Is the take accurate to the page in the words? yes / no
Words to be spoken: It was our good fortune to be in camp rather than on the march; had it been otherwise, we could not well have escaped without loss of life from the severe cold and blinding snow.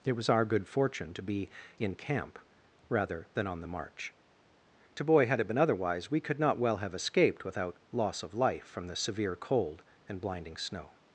no